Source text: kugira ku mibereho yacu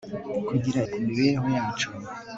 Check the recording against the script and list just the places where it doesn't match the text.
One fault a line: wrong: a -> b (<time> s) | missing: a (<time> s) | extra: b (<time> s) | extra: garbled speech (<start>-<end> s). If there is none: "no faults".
no faults